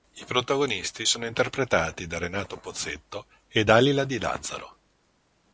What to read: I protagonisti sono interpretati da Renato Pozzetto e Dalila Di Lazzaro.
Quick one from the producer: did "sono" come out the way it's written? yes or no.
yes